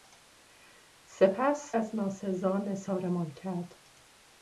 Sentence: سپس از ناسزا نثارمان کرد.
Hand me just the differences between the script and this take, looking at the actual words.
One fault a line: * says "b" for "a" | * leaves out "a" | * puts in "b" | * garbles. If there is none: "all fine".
all fine